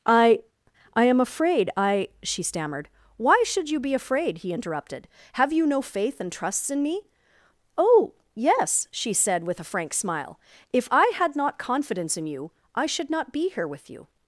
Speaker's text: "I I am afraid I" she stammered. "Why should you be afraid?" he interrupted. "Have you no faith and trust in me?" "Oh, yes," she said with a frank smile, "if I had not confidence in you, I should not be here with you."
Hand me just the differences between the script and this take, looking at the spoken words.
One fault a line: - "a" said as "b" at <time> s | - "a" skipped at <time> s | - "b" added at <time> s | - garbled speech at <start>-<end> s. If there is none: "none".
- "trust" said as "trusts" at 6.3 s